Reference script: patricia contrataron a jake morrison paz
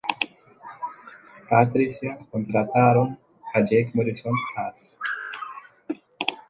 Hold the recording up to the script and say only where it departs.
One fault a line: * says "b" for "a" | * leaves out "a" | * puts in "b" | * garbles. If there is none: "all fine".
all fine